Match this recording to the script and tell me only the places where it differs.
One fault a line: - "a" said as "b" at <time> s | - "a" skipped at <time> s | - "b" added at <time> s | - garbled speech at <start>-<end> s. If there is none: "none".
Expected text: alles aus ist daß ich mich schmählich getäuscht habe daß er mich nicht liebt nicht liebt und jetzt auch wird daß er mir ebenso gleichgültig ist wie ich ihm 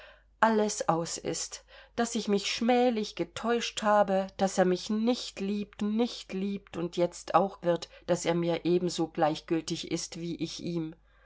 none